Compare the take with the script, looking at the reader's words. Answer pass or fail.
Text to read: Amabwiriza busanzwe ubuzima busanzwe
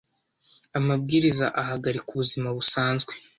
fail